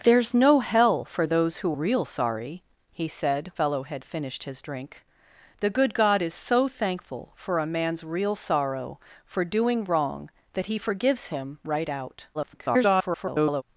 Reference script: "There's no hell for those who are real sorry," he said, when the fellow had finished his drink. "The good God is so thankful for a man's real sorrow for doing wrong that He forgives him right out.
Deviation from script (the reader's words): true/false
true